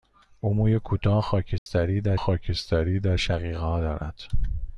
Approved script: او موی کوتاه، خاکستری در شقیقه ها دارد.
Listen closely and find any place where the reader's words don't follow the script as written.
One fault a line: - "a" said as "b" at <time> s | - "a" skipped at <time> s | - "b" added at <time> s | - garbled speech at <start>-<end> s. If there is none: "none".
- "خاکستری در" added at 2.2 s